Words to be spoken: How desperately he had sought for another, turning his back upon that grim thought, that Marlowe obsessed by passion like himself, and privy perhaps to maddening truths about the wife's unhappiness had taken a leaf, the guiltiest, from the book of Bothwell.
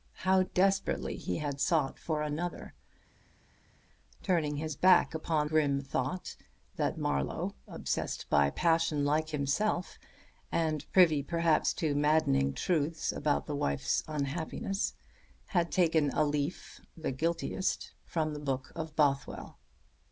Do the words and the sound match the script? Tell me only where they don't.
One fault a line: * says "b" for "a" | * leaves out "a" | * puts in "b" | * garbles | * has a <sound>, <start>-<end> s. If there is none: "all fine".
* leaves out "that"